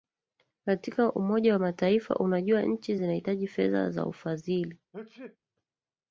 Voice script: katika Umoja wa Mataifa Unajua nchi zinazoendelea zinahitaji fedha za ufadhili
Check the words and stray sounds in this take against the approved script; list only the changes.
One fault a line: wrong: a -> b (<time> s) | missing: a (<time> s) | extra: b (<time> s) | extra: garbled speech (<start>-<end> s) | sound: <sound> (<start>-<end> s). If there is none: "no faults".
missing: zinazoendelea (3.0 s)
sound: sneeze (4.9-5.4 s)